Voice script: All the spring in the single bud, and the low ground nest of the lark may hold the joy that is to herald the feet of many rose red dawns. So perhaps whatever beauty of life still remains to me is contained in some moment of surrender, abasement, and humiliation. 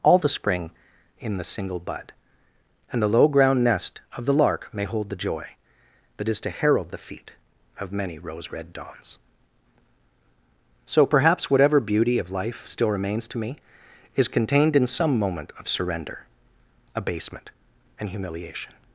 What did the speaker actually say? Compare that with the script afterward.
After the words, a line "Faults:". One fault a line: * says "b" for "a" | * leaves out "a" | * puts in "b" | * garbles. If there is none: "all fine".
All the spring in the single bud, and the low ground nest of the lark may hold the joy that is to herald the feet of many rose red dawns. So perhaps whatever beauty of life still remains to me is contained in some moment of surrender, abasement, and humiliation.
Faults:
all fine